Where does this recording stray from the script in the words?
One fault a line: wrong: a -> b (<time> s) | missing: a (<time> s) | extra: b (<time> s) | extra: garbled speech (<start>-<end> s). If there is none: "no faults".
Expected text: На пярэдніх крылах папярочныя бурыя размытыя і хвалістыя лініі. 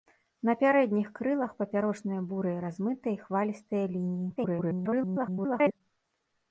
extra: garbled speech (4.4-5.8 s)